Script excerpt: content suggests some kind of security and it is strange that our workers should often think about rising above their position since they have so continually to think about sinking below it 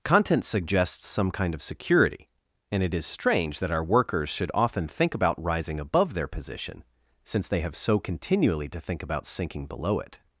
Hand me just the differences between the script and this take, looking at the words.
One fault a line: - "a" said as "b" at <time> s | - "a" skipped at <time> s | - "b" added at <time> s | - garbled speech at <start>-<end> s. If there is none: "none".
none